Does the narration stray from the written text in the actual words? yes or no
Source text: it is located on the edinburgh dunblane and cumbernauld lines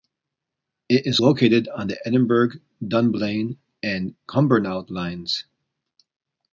no